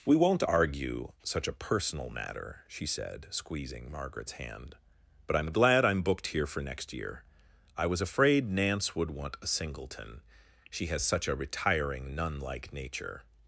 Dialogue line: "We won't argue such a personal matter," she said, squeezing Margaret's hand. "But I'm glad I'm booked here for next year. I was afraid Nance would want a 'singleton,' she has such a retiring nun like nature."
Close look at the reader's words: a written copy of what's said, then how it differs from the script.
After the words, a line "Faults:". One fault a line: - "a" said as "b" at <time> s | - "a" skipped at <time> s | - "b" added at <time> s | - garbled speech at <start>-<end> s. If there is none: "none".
"We won't argue such a personal matter," she said, squeezing Margaret's hand. "But I'm glad I'm booked here for next year. I was afraid Nance would want a 'singleton,' she has such a retiring nun like nature."
Faults:
none